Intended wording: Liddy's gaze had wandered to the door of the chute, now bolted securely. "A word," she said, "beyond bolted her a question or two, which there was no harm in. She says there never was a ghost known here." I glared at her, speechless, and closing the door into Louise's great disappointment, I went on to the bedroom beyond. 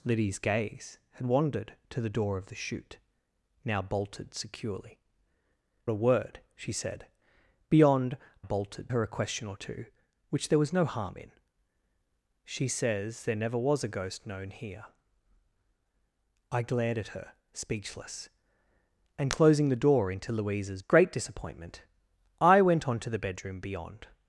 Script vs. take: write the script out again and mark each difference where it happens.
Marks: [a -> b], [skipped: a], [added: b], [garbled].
Liddy's gaze had wandered to the door of the chute, now bolted securely. "A word," she said, "beyond bolted her a question or two, which there was no harm in. She says there never was a ghost known here." I glared at her, speechless, and closing the door into Louise's great disappointment, I went on to the bedroom beyond.